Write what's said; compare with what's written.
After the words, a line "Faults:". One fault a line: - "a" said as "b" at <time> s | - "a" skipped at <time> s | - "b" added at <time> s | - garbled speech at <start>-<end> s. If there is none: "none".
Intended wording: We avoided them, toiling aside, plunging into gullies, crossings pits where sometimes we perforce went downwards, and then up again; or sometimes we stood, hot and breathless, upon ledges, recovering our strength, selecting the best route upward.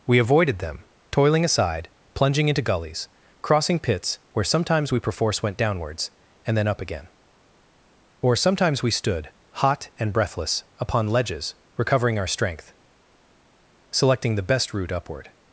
We avoided them, toiling aside, plunging into gullies, crossing pits where sometimes we perforce went downwards, and then up again; or sometimes we stood, hot and breathless, upon ledges, recovering our strength, selecting the best route upward.
Faults:
- "crossings" said as "crossing" at 3.4 s